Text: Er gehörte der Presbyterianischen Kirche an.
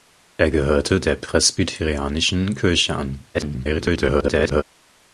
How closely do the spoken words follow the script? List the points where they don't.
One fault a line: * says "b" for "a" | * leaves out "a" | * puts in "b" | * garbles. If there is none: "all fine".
* garbles